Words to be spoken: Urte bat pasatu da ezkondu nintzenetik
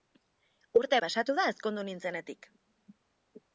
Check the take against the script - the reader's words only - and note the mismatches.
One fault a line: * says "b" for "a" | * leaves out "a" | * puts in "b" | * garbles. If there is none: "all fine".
* leaves out "bat"